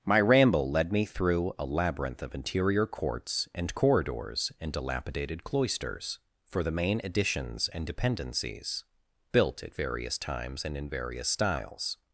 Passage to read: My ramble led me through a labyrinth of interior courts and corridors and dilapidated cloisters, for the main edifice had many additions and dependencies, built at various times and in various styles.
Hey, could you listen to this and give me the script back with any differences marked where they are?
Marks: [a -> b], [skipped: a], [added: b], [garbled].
My ramble led me through a labyrinth of interior courts and corridors and dilapidated cloisters, for the main [skipped: edifice had many] additions and dependencies, built at various times and in various styles.